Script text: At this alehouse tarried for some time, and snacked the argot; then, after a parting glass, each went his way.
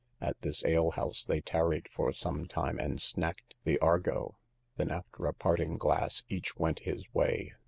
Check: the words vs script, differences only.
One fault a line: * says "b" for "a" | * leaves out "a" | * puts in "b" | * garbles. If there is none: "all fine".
* puts in "they"